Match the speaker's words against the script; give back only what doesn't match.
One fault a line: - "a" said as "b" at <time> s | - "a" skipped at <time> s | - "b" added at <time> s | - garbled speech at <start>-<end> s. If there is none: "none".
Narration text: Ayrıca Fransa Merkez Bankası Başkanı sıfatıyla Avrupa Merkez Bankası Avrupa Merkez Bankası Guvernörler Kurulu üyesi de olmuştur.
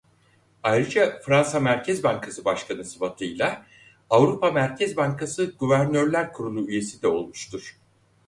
- "Avrupa Merkez Bankası" skipped at 5.5 s